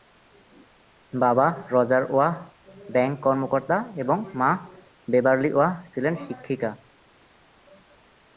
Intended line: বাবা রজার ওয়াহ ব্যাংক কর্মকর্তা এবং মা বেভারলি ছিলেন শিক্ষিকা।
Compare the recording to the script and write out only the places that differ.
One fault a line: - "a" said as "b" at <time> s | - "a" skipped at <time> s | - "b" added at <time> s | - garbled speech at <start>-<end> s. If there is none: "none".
- "ওয়াহ" added at 5.5 s